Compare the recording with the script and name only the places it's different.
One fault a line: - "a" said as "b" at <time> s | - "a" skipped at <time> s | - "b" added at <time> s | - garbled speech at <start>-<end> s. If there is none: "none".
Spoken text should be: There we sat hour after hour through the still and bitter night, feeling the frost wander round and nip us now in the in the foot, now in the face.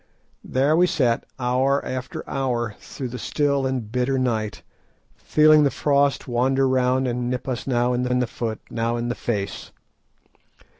none